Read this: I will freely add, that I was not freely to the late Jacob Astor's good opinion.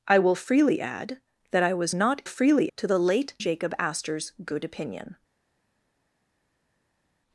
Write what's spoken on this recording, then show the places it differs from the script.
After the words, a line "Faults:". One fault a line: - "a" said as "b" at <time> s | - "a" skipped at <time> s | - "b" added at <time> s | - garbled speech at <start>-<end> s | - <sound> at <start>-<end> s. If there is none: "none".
I will freely add, that I was not freely to the late Jacob Astor's good opinion.
Faults:
none